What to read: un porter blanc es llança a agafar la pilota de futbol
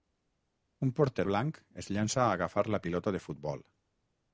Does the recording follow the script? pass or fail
pass